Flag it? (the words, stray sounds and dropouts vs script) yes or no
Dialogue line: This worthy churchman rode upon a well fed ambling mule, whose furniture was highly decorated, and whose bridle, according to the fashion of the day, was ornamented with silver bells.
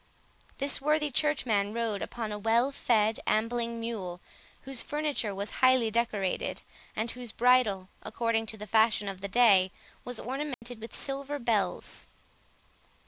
yes